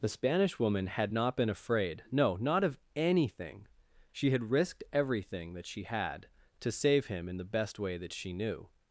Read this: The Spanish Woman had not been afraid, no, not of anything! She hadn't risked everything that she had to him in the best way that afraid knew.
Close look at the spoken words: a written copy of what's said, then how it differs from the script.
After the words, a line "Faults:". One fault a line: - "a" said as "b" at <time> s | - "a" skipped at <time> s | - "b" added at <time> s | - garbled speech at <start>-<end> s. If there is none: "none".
The Spanish Woman had not been afraid, no, not of anything! She had risked everything that she had to save him in the best way that she knew.
Faults:
- "hadn't" said as "had" at 4.3 s
- "save" added at 6.7 s
- "afraid" said as "she" at 8.1 s